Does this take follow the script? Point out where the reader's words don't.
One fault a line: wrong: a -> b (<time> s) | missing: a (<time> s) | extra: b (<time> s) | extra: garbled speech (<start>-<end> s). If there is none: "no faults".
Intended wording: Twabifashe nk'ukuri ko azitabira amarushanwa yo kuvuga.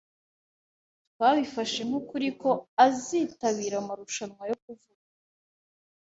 no faults